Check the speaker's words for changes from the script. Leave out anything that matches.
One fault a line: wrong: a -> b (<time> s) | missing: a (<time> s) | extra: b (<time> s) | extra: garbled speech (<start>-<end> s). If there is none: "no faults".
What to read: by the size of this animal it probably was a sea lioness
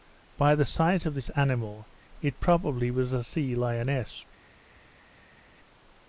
no faults